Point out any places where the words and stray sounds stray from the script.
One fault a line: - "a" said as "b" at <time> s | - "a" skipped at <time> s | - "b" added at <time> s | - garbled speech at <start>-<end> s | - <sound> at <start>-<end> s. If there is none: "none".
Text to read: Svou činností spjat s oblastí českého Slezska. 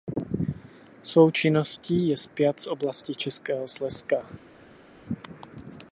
- "je" added at 2.1 s